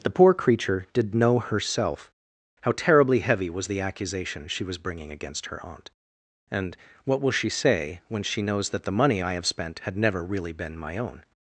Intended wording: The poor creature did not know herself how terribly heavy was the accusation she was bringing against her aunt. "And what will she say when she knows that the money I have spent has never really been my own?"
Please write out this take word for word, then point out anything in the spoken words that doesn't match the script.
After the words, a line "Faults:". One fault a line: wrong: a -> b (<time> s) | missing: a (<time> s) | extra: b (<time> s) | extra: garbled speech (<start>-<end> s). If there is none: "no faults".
The poor creature did know herself how terribly heavy was the accusation she was bringing against her aunt. "And what will she say when she knows that the money I have spent had never really been my own?"
Faults:
missing: not (1.1 s)
wrong: has -> had (9.8 s)